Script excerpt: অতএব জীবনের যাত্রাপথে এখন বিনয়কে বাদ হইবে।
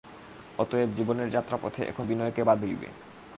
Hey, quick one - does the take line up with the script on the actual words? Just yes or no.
yes